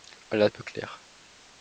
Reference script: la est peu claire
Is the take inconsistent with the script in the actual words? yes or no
no